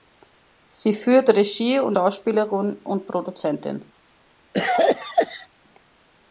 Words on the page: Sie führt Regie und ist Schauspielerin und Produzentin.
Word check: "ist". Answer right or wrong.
wrong